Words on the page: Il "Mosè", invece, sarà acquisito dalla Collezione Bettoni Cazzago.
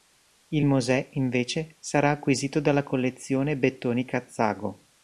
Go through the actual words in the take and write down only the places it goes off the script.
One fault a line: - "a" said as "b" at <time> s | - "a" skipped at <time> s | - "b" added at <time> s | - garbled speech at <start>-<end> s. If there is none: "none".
none